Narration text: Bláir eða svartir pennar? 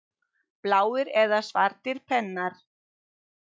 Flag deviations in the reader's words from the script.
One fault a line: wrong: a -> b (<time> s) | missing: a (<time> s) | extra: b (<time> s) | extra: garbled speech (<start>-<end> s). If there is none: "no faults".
no faults